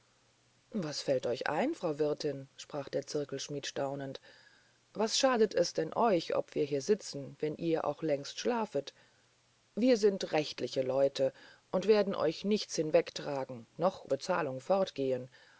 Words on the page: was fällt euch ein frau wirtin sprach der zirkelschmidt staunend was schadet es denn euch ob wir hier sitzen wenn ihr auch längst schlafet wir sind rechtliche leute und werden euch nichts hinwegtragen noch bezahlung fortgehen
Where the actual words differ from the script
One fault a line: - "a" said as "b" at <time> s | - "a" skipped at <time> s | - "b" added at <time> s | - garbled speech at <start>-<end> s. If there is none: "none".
none